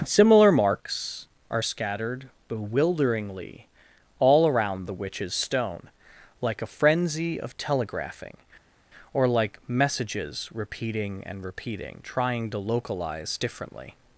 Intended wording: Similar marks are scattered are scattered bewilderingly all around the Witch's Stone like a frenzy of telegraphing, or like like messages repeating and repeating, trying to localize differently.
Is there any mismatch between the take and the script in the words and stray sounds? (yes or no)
yes